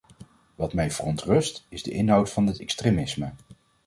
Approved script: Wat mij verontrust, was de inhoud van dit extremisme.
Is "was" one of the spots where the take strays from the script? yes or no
yes